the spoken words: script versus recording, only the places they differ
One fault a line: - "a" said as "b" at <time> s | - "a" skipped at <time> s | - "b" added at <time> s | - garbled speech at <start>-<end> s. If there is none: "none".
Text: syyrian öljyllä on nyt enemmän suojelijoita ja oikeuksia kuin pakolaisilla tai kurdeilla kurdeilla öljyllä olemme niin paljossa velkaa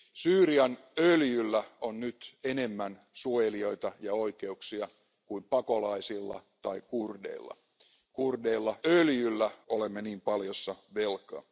none